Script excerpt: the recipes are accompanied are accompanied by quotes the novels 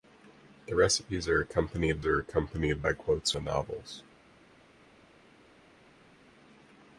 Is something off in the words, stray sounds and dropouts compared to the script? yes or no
no